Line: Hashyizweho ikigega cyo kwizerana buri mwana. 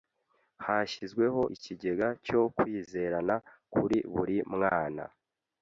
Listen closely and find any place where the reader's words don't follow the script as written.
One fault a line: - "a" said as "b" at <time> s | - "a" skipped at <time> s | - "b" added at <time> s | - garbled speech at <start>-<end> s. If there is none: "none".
- "kuri" added at 3.7 s